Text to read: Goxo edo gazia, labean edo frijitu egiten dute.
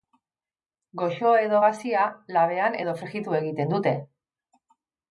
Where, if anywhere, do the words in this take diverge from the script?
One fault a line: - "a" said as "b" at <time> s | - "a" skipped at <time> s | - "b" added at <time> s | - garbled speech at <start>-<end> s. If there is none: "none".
none